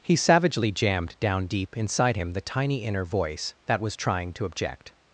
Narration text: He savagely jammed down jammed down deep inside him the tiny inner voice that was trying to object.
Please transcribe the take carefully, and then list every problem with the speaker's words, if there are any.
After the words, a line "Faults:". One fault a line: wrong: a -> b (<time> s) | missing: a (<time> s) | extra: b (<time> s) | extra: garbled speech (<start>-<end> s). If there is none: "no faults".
He savagely jammed down deep inside him the tiny inner voice that was trying to object.
Faults:
missing: jammed down (1.5 s)